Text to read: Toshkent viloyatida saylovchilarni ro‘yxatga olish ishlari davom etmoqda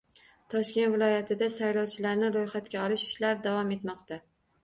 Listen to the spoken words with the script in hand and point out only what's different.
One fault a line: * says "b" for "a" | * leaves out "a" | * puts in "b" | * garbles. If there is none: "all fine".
all fine